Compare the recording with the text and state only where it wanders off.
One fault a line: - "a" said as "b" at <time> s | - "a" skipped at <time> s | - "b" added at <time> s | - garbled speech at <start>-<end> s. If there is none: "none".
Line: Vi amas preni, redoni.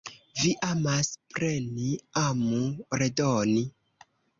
- "amu" added at 2.2 s